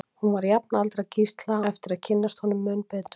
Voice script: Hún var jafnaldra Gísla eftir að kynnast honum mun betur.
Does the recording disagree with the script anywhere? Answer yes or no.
no